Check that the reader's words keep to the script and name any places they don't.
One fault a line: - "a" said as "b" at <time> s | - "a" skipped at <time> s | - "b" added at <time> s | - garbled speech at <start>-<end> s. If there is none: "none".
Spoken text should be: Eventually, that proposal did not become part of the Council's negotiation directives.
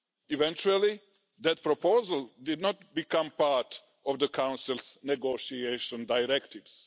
none